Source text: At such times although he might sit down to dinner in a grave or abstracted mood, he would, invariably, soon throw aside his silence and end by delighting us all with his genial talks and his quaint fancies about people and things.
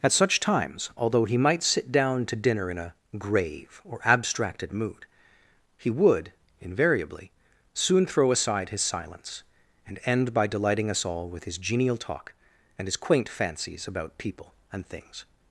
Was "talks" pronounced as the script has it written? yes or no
no